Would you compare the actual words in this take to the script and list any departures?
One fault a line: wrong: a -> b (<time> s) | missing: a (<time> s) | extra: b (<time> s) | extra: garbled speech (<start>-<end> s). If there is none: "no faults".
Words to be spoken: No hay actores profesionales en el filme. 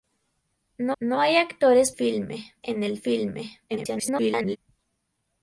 extra: no (1.0 s)
wrong: profesionales -> filme (1.9 s)
extra: garbled speech (3.7-4.6 s)